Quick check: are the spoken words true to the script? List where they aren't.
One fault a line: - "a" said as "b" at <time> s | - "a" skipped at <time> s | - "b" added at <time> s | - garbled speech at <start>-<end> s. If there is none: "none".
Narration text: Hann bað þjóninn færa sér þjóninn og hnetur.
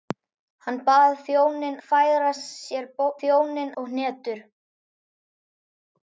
none